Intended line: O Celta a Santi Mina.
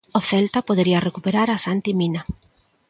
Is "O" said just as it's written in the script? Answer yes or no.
yes